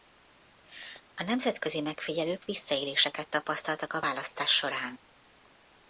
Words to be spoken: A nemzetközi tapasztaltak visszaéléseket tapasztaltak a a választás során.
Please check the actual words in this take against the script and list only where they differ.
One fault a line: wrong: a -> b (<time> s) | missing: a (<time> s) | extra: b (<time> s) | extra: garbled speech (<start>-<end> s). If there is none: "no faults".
wrong: tapasztaltak -> megfigyelők (1.8 s)
missing: a (4.0 s)